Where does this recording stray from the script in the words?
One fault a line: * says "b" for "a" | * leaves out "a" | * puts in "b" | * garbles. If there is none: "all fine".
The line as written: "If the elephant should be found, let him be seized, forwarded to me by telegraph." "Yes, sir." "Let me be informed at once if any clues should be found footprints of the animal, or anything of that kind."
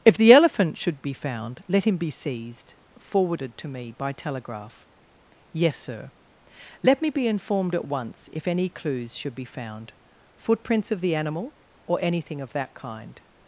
all fine